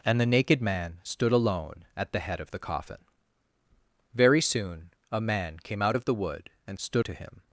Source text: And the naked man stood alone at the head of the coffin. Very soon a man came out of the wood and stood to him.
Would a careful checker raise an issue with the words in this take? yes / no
no